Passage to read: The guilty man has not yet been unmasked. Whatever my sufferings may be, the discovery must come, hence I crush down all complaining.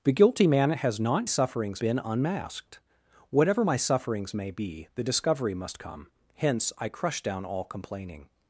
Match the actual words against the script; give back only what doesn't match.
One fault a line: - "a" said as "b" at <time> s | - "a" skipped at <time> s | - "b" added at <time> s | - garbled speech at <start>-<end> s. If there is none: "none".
- "yet" said as "sufferings" at 1.2 s